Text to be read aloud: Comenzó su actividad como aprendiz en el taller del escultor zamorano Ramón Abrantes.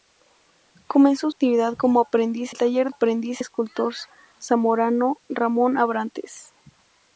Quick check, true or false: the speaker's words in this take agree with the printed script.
false